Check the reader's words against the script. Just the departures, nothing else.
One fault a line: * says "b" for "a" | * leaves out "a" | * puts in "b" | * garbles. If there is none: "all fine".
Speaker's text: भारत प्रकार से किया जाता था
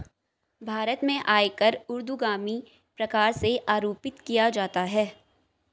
* puts in "में आयकर ऊर्ध्वगामी"
* puts in "आरोपित"
* says "है" for "था"